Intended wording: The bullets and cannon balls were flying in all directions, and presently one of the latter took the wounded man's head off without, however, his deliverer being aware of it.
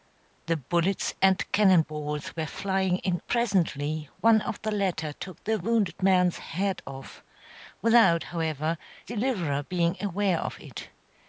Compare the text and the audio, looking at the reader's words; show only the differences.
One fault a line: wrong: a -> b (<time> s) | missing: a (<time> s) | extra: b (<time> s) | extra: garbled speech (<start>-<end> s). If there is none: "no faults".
missing: all directions and (3.2 s)
missing: his (8.8 s)